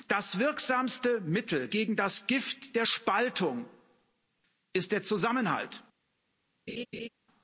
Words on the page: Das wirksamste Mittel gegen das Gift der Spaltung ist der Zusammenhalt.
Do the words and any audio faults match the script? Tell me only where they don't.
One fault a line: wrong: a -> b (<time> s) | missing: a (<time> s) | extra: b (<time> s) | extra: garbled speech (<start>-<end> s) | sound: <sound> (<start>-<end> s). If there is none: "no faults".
sound: laugh (6.7-7.1 s)